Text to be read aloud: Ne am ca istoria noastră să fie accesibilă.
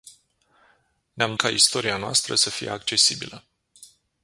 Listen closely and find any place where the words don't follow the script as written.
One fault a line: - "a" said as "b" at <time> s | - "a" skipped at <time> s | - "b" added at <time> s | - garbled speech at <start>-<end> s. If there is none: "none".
none